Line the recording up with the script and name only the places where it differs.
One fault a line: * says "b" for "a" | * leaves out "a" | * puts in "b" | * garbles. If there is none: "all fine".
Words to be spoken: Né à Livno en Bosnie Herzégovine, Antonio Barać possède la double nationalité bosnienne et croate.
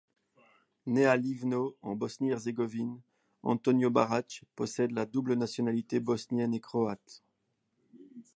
all fine